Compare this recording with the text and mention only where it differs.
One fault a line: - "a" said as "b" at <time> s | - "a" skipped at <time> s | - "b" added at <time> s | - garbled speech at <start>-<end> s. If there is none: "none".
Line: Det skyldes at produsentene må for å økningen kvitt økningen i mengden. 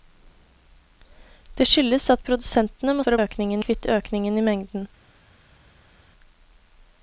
none